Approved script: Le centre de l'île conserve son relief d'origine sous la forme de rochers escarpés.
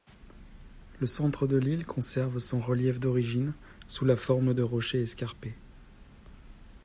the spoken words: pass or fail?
pass